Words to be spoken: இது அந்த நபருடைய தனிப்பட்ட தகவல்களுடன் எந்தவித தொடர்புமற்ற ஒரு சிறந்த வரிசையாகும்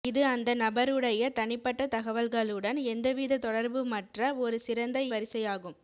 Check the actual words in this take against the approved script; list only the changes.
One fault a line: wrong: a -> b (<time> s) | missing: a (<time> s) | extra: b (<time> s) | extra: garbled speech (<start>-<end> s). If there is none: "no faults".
no faults